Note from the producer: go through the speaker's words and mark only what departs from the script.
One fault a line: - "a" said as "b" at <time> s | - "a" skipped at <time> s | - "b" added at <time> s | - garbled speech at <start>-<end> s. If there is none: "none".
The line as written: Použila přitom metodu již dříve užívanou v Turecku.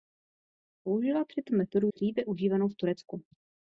- "již" skipped at 1.9 s